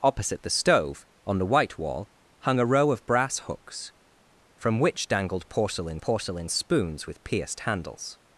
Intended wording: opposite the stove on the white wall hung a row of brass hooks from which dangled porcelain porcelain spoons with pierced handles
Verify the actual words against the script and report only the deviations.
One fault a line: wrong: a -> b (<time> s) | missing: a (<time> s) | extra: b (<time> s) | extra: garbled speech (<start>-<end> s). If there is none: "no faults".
no faults